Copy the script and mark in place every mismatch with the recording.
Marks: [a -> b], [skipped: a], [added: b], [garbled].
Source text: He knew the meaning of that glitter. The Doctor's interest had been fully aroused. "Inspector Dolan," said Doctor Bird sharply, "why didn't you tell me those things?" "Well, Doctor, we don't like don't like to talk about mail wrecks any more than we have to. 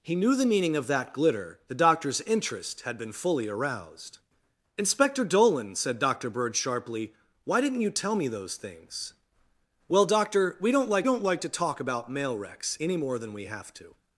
He knew the meaning of that glitter. The Doctor's interest had been fully aroused. "Inspector Dolan," said Doctor Bird sharply, "why didn't you tell me those things?" "Well, Doctor, we don't like don't like to talk about mail wrecks any more than we have to.